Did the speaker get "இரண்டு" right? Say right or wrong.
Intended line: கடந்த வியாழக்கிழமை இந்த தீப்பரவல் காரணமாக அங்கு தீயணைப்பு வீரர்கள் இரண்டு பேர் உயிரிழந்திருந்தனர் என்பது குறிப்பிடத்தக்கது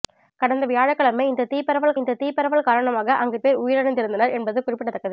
wrong